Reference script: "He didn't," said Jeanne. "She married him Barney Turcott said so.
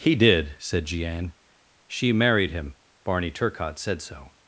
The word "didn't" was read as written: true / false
false